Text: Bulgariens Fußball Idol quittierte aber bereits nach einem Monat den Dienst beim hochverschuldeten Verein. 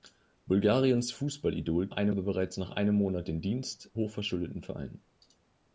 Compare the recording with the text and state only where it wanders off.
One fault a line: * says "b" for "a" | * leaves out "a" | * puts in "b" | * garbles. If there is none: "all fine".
* says "einem" for "quittierte"
* leaves out "beim"